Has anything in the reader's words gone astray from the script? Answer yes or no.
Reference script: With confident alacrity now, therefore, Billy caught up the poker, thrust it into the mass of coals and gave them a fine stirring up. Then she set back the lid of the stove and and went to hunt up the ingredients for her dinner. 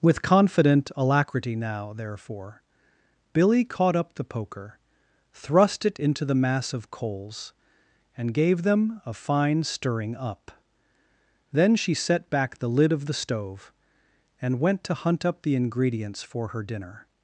yes